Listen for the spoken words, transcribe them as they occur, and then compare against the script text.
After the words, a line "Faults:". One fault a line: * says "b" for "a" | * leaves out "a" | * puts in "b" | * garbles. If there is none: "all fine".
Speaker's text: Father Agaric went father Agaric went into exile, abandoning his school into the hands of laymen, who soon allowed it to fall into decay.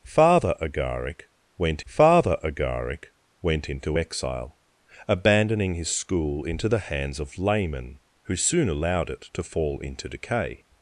Father Agaric went father Agaric went into exile, abandoning his school into the hands of laymen, who soon allowed it to fall into decay.
Faults:
all fine